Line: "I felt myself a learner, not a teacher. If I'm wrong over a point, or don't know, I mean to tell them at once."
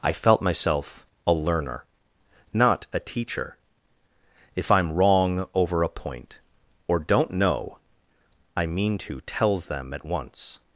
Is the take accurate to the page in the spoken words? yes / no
no